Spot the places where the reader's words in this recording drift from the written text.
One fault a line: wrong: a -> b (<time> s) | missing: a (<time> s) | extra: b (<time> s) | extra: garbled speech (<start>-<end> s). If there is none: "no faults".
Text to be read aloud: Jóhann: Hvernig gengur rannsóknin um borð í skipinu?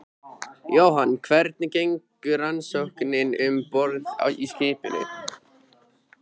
no faults